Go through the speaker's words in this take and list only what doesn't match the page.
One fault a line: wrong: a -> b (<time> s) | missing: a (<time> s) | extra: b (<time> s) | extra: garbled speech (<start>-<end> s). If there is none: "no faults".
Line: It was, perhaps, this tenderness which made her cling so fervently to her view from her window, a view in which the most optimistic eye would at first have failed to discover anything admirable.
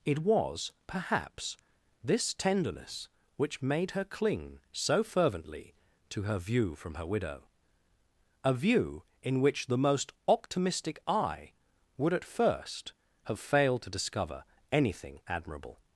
wrong: window -> widow (7.0 s)